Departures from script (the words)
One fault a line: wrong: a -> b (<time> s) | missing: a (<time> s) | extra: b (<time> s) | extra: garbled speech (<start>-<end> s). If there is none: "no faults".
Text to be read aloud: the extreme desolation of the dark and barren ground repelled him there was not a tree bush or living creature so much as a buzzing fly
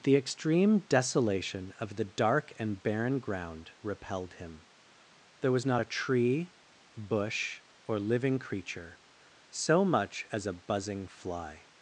no faults